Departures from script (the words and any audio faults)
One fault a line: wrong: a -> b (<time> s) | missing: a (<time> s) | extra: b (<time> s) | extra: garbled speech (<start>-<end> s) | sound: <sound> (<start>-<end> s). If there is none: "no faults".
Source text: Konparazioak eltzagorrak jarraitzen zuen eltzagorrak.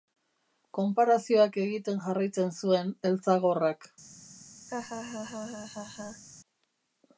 wrong: eltzagorrak -> egiten (1.6 s)
sound: laugh (4.7-6.2 s)